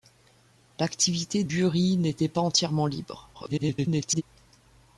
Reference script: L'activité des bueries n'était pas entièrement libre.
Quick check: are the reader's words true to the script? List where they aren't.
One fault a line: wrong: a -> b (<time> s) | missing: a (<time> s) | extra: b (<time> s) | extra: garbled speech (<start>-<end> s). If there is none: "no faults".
missing: des (1.4 s)
extra: garbled speech (3.3-4.2 s)